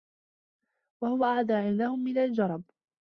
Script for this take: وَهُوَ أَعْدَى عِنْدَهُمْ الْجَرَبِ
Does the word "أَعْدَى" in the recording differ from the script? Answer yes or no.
no